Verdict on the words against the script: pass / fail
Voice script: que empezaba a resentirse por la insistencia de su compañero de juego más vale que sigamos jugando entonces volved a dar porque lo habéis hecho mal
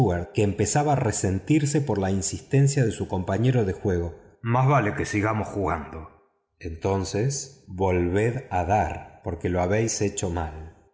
pass